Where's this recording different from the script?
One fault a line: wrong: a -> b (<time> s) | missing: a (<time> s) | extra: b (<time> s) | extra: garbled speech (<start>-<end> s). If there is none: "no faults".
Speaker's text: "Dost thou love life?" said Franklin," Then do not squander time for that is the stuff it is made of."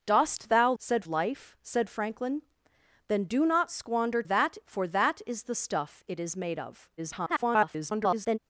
wrong: love -> said (0.8 s)
wrong: time -> that (4.2 s)
extra: garbled speech (7.0-8.4 s)